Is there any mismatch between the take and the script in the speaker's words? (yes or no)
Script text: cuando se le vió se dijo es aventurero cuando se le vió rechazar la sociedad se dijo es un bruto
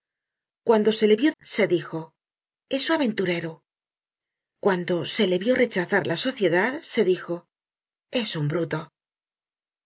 no